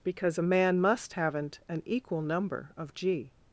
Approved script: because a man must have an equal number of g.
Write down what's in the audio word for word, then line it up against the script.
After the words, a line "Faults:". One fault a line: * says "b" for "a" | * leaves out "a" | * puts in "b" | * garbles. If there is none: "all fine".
because a man must haven't an equal number of g.
Faults:
* says "haven't" for "have"